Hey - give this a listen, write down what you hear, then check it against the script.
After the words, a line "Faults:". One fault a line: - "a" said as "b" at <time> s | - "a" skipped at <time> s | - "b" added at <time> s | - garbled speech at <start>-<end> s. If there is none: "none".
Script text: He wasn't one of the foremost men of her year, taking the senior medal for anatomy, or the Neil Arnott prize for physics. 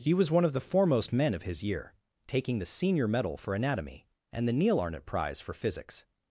He was one of the foremost men of his year, taking the senior medal for anatomy, and the Neil Arnott prize for physics.
Faults:
- "wasn't" said as "was" at 0.1 s
- "her" said as "his" at 1.4 s
- "or" said as "and" at 4.3 s